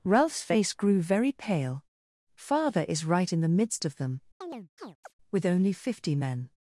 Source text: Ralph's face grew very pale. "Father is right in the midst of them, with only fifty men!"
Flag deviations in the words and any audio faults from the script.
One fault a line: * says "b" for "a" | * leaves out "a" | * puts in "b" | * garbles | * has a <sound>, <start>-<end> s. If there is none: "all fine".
* has a chirp, 4.4-5.1 s